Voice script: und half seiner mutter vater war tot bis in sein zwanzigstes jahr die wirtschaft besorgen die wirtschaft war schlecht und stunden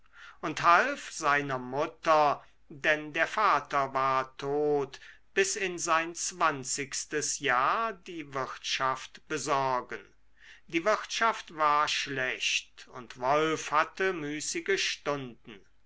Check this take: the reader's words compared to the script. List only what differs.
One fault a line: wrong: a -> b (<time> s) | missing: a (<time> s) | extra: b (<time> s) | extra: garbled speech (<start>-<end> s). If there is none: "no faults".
extra: denn der (2.7 s)
extra: wolf hatte müßige (13.2 s)